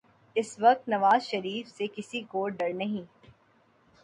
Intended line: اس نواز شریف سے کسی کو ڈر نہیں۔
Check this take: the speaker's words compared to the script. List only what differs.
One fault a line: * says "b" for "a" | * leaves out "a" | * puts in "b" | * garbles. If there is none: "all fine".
* puts in "وقت"